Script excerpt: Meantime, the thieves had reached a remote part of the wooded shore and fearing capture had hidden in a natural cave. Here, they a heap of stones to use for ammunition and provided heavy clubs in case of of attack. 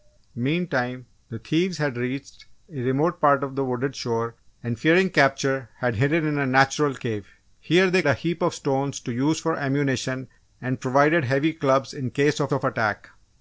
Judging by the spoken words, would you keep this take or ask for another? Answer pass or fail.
pass